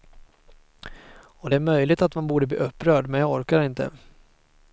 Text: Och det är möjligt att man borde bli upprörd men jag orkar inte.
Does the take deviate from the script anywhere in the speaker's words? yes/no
no